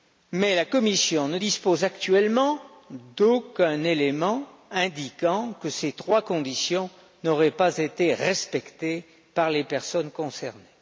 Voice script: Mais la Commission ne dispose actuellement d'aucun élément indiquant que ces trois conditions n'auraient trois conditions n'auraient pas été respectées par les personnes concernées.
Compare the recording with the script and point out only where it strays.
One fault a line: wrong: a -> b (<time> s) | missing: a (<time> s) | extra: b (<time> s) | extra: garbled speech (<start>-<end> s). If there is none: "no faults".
missing: trois conditions n'auraient (7.5 s)